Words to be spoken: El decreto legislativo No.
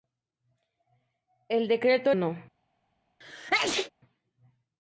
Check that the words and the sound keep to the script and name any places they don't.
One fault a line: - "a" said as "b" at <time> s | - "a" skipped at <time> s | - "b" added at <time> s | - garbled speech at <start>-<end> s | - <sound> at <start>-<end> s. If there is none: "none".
- "legislativo" skipped at 2.1 s
- sneeze at 3.2-3.9 s